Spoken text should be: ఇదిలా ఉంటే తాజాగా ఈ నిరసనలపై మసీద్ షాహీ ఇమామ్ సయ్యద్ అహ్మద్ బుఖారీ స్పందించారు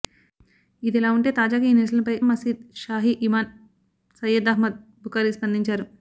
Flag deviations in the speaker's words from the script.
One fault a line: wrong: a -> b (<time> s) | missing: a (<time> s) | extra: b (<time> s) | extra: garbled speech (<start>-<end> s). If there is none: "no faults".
no faults